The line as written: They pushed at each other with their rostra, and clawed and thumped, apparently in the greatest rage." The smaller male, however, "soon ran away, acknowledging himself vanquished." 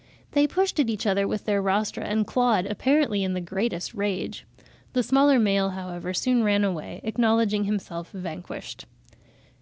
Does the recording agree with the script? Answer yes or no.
no